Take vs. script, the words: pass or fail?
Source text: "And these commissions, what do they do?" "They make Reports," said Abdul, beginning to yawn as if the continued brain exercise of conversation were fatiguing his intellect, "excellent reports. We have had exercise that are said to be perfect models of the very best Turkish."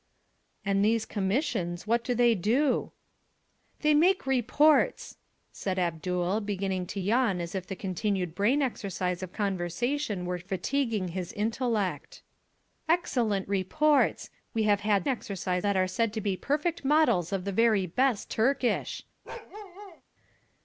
pass